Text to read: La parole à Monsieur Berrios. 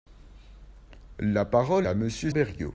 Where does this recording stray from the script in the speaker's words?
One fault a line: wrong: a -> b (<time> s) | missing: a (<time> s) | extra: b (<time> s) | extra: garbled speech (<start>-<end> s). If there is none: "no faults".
no faults